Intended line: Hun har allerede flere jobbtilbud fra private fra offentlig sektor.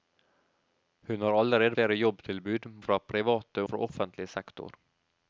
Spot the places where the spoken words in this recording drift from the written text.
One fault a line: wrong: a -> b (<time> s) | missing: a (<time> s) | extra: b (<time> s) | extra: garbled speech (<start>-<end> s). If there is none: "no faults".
no faults